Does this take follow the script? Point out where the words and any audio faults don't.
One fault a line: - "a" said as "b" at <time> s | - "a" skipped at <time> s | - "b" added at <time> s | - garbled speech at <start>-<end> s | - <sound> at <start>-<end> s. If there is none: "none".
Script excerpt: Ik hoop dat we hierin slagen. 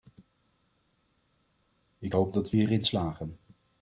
none